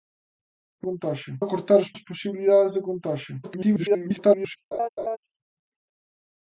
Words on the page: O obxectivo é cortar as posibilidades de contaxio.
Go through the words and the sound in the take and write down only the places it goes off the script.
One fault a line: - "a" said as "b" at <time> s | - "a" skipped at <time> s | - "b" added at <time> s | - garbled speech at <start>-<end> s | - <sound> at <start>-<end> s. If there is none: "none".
- "obxectivo" said as "contaxio" at 0.9 s
- "as" added at 1.9 s
- garbled speech at 3.4-4.6 s
- laugh at 4.7-5.2 s